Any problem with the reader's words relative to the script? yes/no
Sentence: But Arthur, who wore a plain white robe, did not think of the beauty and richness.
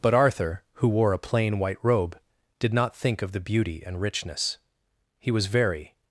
yes